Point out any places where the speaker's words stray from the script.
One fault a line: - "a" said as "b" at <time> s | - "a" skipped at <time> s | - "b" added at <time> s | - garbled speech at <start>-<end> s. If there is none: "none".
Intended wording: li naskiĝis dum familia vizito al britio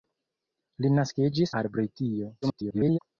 - "dum familia vizito" skipped at 1.5 s
- garbled speech at 2.4-3.0 s